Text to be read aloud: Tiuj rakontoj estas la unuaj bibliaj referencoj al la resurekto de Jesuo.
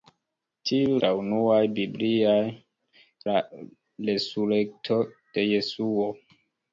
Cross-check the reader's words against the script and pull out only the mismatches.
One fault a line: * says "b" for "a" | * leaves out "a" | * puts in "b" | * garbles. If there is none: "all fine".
* leaves out "rakontoj estas"
* leaves out "referencoj al"